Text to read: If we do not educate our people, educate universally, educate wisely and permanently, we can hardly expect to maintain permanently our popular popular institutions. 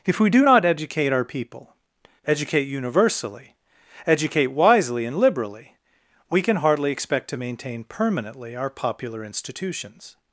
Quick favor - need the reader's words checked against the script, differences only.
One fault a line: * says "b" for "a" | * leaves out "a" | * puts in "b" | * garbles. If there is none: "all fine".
* says "liberally" for "permanently"
* leaves out "popular"